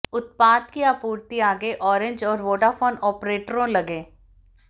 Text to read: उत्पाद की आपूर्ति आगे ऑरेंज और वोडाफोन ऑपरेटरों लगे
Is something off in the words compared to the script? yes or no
no